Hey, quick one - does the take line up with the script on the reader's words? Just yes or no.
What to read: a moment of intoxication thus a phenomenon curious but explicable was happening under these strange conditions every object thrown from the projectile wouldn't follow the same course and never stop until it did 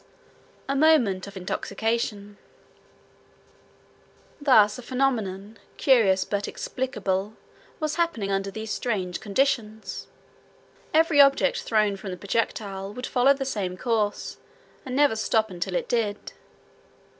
no